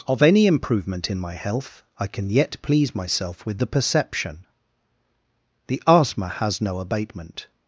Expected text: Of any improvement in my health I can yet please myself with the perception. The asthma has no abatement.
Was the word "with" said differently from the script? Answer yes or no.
no